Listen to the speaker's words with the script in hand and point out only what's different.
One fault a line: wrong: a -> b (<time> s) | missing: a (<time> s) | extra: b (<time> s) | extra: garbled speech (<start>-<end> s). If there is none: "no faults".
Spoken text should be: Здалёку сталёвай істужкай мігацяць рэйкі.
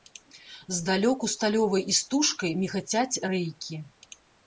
no faults